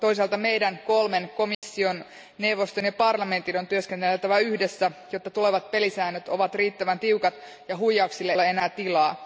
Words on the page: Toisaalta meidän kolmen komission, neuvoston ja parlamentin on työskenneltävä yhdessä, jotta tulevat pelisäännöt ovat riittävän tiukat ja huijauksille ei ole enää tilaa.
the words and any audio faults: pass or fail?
fail